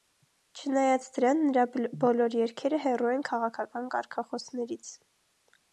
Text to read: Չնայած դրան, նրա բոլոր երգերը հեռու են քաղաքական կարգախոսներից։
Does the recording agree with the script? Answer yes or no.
yes